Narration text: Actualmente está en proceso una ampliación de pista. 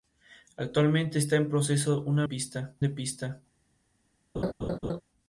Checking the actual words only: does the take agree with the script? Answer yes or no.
no